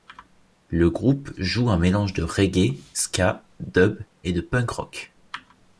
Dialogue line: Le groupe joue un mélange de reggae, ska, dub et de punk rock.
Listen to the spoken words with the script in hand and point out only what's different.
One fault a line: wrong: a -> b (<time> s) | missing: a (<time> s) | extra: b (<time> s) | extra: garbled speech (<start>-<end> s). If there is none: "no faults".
no faults